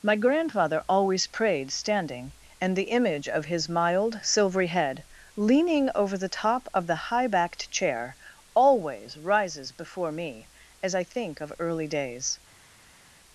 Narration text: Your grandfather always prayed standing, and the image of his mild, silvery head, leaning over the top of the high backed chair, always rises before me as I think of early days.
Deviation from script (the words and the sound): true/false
true